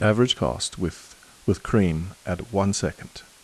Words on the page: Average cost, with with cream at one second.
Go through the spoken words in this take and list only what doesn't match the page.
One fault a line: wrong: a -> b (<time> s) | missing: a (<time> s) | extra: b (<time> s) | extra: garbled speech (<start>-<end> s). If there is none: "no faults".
no faults